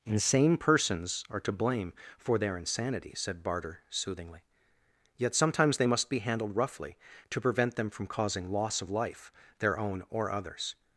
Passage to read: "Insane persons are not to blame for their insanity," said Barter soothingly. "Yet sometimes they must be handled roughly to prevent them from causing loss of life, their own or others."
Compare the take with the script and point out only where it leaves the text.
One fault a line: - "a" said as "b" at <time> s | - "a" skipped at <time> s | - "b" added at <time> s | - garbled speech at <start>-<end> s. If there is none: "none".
- "not" skipped at 1.4 s